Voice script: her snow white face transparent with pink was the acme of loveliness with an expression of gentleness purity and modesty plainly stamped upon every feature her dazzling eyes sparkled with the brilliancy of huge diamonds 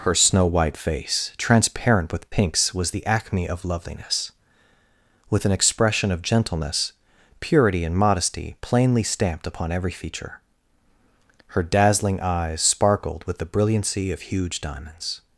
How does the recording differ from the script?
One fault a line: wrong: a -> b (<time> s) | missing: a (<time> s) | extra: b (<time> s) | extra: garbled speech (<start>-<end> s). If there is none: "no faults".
wrong: pink -> pinks (2.3 s)